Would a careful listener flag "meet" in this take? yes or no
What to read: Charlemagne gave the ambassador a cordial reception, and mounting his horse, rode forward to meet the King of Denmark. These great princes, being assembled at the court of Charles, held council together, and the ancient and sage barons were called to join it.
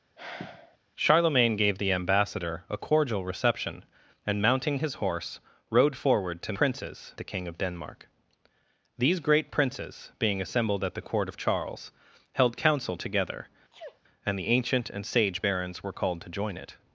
yes